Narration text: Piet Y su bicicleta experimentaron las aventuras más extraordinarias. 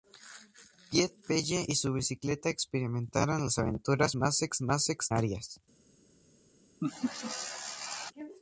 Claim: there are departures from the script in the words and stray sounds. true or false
true